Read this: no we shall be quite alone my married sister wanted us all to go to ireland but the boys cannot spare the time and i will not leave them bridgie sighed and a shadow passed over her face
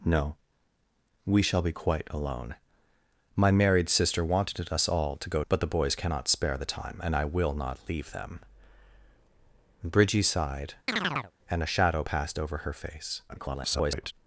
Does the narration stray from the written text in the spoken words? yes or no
yes